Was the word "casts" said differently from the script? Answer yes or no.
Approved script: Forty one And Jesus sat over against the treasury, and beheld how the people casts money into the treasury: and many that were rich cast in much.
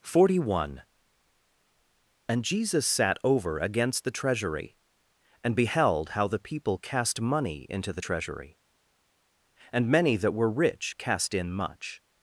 yes